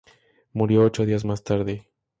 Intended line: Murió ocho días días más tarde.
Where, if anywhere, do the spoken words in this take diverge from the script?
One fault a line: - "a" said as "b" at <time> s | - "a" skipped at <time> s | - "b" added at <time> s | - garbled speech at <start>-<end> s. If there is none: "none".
- "días" skipped at 1.3 s